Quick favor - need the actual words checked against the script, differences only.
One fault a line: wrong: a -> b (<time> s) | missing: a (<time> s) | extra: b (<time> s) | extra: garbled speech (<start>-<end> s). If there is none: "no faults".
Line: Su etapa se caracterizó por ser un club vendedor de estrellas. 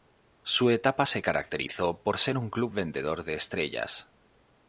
no faults